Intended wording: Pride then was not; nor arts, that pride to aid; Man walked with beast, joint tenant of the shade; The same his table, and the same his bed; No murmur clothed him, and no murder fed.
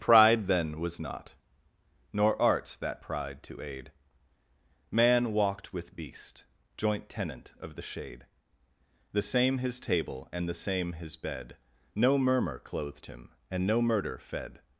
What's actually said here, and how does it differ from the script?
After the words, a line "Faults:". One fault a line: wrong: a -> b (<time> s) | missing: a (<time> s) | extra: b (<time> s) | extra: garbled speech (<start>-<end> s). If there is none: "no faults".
Pride then was not; nor arts, that pride to aid; Man walked with beast, joint tenant of the shade; The same his table, and the same his bed; No murmur clothed him, and no murder fed.
Faults:
no faults